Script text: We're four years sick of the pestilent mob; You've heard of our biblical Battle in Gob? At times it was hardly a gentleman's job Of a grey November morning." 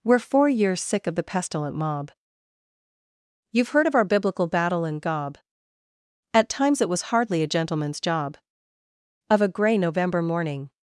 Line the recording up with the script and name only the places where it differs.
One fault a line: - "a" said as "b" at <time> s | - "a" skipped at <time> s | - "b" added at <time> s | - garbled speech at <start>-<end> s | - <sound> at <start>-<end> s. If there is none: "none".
none